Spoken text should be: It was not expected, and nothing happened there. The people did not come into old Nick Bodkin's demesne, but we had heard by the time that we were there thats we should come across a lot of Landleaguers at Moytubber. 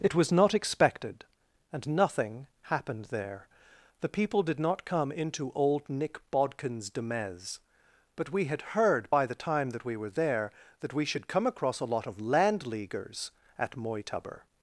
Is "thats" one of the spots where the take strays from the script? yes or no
yes